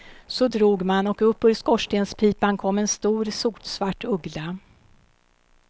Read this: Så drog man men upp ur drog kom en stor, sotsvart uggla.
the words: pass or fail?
fail